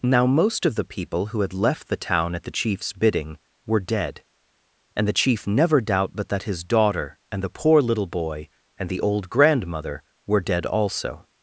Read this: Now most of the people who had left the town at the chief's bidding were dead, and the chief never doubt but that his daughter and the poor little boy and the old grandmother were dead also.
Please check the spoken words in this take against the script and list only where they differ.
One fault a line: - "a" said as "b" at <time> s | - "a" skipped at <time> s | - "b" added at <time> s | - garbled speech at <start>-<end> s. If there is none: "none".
none